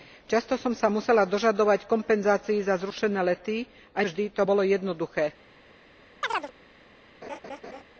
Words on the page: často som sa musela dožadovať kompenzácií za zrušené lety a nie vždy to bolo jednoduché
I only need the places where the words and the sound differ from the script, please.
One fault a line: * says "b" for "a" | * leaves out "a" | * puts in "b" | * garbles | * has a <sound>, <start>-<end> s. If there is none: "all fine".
* leaves out "nie"
* has a chirp, 6.2-6.5 s
* has a laugh, 7.2-7.8 s